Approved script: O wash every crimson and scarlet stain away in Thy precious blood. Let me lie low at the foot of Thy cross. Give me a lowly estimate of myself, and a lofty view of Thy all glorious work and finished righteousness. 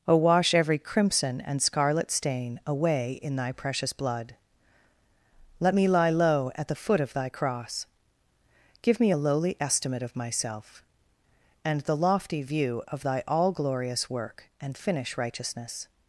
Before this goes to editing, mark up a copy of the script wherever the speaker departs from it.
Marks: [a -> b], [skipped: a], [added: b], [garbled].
O wash every crimson and scarlet stain away in Thy precious blood. Let me lie low at the foot of Thy cross. Give me a lowly estimate of myself, and [a -> the] lofty view of Thy all glorious work and [finished -> finish] righteousness.